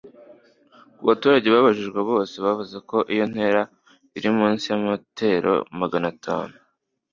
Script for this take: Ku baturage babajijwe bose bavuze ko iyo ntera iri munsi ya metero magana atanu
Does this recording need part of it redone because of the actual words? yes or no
no